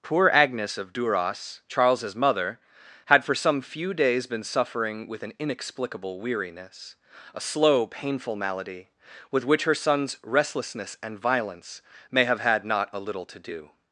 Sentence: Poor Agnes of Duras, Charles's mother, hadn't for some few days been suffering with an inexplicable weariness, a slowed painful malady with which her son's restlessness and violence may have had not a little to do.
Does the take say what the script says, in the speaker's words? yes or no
no